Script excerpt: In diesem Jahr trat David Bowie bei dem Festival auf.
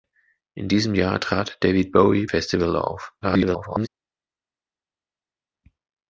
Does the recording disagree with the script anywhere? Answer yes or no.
yes